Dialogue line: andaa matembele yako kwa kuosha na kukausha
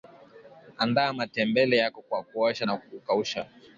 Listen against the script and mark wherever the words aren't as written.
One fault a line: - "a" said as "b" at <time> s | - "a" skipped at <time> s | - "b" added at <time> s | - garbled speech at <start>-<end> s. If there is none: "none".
none